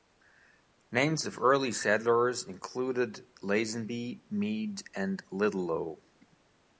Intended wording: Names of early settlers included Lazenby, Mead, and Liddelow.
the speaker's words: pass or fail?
pass